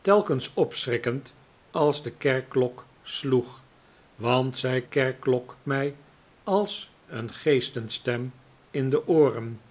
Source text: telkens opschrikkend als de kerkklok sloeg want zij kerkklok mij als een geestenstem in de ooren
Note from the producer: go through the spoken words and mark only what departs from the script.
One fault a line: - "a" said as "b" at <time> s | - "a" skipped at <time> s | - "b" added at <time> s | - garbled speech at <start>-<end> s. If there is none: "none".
none